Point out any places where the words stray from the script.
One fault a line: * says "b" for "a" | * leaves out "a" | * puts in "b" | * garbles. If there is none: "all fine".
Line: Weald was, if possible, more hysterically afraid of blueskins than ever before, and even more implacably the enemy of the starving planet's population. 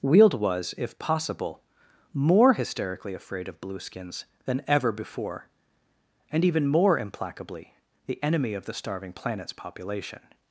all fine